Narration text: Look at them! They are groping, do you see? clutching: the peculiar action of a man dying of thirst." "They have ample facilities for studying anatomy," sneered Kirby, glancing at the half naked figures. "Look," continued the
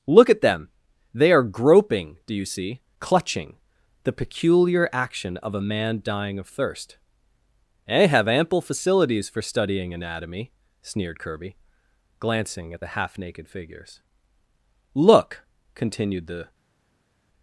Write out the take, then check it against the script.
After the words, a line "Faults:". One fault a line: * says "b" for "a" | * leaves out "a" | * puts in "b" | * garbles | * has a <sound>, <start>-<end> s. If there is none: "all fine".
Look at them! They are groping, do you see? clutching: the peculiar action of a man dying of thirst." "They have ample facilities for studying anatomy," sneered Kirby, glancing at the half naked figures. "Look," continued the
Faults:
all fine